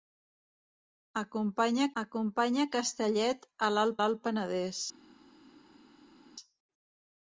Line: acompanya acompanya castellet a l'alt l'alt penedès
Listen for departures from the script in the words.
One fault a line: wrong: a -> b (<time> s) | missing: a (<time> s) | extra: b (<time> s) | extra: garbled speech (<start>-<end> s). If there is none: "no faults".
no faults